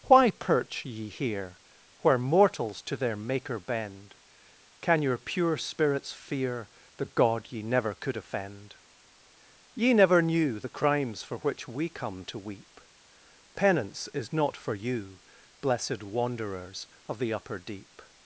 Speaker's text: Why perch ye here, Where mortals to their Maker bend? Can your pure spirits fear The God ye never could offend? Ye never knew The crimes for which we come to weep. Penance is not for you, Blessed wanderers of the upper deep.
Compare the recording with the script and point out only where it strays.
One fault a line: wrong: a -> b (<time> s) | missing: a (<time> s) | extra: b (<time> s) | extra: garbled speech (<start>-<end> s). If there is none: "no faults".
no faults